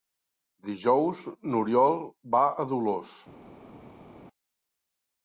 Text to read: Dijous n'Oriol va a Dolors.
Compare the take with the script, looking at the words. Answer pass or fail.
pass